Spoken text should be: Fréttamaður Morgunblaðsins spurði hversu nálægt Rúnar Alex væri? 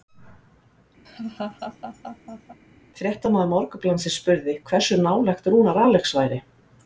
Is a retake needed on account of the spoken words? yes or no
no